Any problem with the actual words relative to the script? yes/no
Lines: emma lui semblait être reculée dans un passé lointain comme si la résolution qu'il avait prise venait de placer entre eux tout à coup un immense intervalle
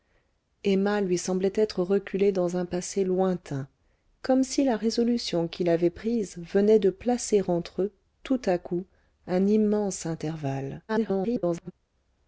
yes